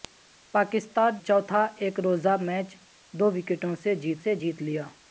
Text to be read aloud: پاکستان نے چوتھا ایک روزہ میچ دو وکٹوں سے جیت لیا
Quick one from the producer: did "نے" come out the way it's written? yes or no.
no